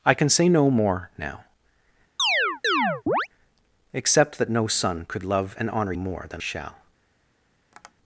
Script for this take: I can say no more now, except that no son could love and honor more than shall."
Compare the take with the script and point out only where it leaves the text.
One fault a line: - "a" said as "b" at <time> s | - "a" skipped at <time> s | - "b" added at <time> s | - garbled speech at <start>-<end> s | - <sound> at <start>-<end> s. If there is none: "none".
- chirp at 2.2-3.3 s
- tap at 7.7-7.9 s